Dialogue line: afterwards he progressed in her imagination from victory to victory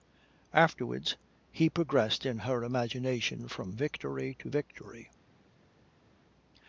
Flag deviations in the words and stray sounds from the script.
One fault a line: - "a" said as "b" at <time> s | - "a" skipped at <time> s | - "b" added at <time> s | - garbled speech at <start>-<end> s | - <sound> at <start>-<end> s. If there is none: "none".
none